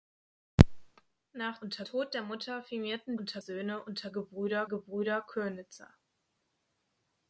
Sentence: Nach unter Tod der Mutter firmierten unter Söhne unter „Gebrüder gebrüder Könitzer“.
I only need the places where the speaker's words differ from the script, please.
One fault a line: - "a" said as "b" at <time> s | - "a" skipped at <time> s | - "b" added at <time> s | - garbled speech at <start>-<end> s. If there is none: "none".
none